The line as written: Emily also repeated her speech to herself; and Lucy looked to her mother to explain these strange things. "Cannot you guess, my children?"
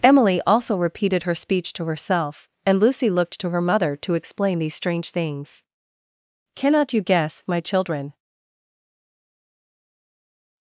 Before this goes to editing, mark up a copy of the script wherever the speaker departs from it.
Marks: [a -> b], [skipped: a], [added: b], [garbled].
Emily also repeated her speech to herself; and Lucy looked to her mother to explain these strange things. "Cannot you guess, my children?"